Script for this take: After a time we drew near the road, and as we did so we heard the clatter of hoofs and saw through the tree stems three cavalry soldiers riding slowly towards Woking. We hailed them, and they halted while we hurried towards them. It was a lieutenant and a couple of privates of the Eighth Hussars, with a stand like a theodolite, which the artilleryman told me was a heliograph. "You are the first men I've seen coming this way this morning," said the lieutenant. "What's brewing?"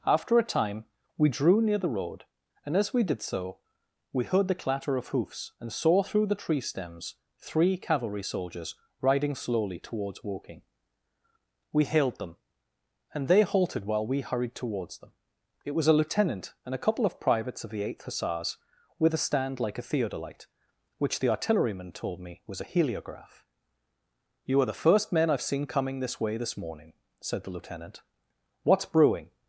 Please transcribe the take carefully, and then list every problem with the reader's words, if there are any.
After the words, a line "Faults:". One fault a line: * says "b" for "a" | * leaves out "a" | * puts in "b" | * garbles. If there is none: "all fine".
After a time we drew near the road, and as we did so we heard the clatter of hoofs and saw through the tree stems three cavalry soldiers riding slowly towards Woking. We hailed them, and they halted while we hurried towards them. It was a lieutenant and a couple of privates of the Eighth Hussars, with a stand like a theodolite, which the artilleryman told me was a heliograph. "You are the first men I've seen coming this way this morning," said the lieutenant. "What's brewing?"
Faults:
all fine